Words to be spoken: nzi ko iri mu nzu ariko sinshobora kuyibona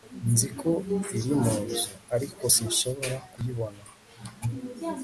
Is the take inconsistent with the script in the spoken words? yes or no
no